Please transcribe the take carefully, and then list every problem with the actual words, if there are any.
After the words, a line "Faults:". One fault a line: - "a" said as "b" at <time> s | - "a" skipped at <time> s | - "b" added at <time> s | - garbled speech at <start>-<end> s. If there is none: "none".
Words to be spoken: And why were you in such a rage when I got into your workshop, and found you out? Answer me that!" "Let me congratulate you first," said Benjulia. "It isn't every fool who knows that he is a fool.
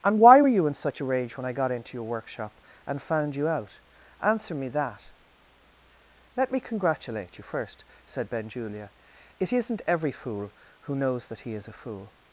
And why were you in such a rage when I got into your workshop, and found you out? Answer me that!" "Let me congratulate you first," said Benjulia. "It isn't every fool who knows that he is a fool.
Faults:
none